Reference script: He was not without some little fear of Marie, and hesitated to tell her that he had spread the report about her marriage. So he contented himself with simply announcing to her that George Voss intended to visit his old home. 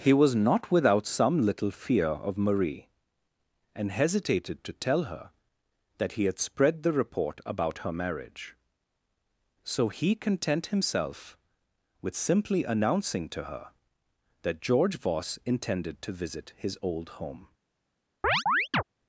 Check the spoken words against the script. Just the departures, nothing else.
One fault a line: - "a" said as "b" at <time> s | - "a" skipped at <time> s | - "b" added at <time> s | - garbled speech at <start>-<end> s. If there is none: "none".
- "contented" said as "content" at 10.2 s